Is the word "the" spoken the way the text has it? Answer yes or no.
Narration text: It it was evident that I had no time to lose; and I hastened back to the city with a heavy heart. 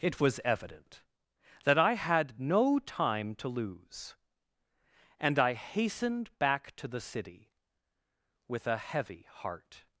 yes